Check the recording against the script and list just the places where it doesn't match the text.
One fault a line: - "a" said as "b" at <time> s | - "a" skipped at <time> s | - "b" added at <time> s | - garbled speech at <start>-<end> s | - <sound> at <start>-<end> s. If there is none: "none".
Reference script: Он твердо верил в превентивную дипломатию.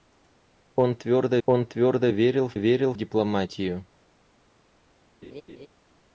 - "он твердо" added at 1.4 s
- "превентивную" said as "верил" at 2.5 s
- laugh at 5.2-5.7 s